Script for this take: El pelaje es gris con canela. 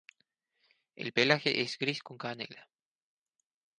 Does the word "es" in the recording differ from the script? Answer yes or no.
no